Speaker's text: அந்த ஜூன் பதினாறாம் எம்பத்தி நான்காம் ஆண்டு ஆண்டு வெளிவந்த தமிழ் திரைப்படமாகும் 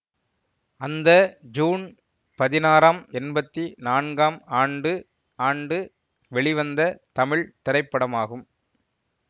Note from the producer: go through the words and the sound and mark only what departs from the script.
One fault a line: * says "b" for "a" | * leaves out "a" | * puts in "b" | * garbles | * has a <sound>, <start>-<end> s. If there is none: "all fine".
all fine